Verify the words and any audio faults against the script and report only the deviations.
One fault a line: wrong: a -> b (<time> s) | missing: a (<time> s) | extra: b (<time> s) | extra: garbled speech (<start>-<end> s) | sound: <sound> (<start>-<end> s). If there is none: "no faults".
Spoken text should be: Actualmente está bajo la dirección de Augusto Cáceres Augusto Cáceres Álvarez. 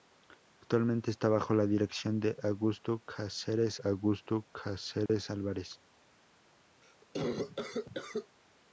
sound: dropout (5.1-5.1 s)
sound: cough (6.8-8.4 s)